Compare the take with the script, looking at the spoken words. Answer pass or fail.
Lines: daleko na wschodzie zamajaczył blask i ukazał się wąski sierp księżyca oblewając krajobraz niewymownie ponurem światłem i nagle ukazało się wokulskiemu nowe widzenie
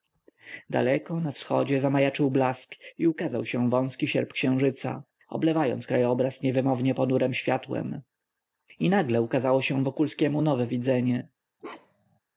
pass